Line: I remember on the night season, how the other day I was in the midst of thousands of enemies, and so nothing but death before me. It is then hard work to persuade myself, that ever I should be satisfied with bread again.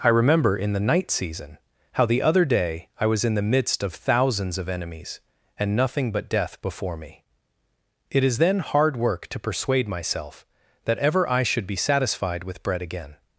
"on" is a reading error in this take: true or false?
true